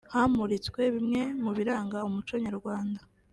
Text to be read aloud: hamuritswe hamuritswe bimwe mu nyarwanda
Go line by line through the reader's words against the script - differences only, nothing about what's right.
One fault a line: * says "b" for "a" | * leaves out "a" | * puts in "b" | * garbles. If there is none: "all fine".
* leaves out "hamuritswe"
* puts in "biranga umuco"